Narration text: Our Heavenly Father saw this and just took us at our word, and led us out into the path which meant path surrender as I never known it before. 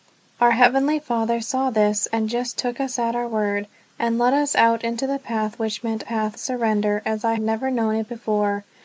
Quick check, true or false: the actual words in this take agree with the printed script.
true